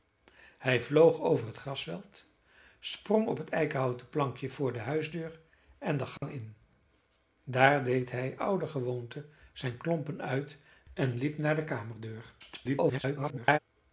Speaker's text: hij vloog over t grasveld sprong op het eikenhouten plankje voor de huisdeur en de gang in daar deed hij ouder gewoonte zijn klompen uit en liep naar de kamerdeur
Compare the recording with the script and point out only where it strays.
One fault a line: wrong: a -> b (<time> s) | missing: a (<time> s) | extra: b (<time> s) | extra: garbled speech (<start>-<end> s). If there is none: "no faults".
extra: garbled speech (12.4-13.6 s)